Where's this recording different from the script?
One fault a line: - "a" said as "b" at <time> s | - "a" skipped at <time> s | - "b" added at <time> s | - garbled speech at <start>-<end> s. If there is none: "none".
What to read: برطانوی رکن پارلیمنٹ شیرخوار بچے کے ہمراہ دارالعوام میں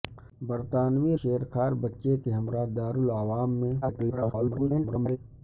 - "رکن پارلیمنٹ" skipped at 1.1 s
- garbled speech at 3.8-5.2 s